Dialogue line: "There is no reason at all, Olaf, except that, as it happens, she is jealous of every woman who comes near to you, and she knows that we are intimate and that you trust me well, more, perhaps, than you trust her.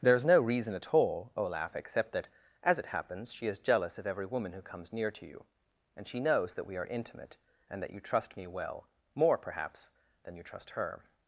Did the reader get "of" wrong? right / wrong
right